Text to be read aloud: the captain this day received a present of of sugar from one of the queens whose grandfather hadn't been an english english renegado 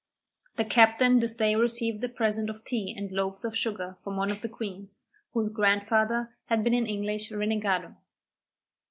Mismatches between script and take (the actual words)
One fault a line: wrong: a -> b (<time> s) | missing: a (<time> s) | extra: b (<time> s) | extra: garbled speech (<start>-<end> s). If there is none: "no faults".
extra: tea and loaves (2.6 s)
wrong: hadn't -> had (6.5 s)
missing: english (7.3 s)